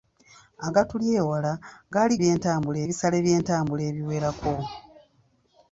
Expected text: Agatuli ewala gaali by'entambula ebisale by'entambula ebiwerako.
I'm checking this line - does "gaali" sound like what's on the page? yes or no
yes